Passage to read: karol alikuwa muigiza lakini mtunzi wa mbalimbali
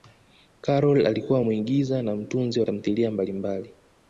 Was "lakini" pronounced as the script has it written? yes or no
no